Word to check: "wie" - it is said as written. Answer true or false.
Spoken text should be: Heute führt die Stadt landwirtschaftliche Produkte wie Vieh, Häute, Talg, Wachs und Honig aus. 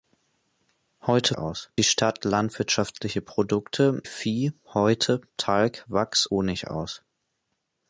false